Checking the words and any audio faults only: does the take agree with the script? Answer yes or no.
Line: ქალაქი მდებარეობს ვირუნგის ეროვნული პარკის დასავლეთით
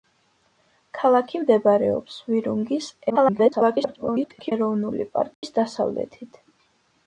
no